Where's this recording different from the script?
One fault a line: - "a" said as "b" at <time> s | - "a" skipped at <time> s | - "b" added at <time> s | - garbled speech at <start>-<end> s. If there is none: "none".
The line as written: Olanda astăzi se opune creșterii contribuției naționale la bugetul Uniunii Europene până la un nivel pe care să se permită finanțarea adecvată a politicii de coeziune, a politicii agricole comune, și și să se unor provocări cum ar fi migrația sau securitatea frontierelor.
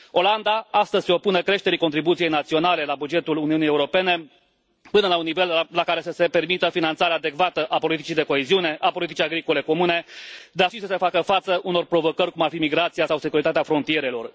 - "pe" said as "la" at 5.7 s
- "și" said as "dar" at 10.5 s
- "facă față" added at 11.0 s